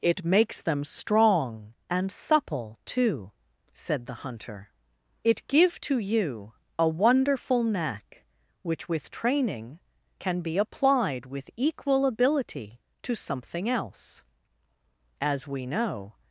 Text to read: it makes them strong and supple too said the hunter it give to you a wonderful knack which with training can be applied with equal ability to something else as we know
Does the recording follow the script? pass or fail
pass